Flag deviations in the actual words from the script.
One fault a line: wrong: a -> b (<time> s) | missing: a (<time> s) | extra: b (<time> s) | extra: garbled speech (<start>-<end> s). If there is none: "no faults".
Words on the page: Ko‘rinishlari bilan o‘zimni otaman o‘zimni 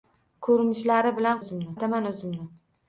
no faults